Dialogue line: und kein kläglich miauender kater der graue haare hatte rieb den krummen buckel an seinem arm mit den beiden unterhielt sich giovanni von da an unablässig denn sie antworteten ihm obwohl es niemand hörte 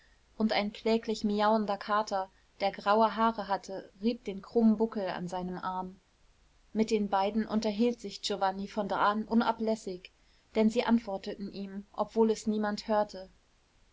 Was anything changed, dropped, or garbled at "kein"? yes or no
yes